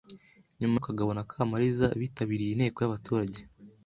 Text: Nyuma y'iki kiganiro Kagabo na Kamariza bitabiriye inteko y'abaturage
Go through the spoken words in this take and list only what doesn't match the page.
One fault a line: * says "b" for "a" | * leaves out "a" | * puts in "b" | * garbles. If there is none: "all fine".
* leaves out "y'iki kiganiro"